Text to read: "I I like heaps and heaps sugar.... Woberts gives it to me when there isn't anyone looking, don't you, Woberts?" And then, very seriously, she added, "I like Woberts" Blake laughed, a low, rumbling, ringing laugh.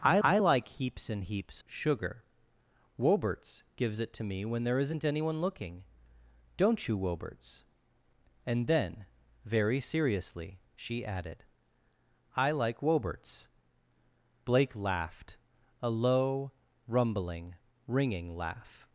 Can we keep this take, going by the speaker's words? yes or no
yes